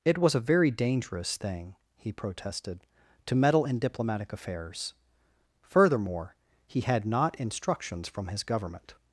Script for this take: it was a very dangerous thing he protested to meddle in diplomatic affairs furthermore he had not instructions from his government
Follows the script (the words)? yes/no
yes